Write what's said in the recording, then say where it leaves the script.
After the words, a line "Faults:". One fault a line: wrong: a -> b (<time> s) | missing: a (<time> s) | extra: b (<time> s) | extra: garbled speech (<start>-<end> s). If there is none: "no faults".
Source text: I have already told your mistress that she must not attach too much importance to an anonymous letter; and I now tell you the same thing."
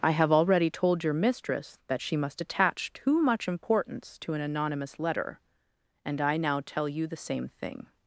I have already told your mistress that she must attach too much importance to an anonymous letter; and I now tell you the same thing."
Faults:
missing: not (2.4 s)